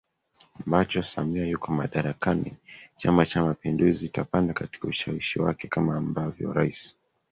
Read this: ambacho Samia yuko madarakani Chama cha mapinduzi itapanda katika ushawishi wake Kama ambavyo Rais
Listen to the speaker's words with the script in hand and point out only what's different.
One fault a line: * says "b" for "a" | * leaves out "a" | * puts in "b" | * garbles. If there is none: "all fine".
all fine